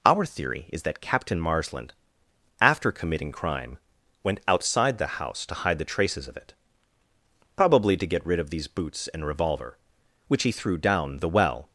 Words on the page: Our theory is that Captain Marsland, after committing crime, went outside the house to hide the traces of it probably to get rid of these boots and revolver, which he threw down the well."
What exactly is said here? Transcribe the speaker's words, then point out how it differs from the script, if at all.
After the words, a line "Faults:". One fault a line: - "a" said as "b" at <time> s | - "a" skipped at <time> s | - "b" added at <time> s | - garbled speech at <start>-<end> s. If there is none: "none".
Our theory is that Captain Marsland, after committing crime, went outside the house to hide the traces of it probably to get rid of these boots and revolver, which he threw down the well."
Faults:
none